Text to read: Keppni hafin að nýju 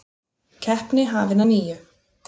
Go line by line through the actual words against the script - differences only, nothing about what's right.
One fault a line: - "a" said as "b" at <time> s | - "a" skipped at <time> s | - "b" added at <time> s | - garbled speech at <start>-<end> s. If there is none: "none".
none